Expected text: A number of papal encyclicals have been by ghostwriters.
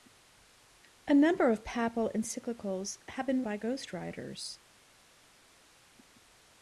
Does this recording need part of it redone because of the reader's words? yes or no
no